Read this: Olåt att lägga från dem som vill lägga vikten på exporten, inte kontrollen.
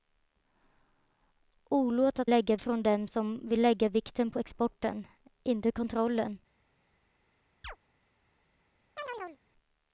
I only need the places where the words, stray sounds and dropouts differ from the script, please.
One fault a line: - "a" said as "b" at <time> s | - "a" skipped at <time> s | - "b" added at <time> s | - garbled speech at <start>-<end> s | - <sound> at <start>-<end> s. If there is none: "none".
- chirp at 7.6-7.8 s
- chirp at 9.0-9.4 s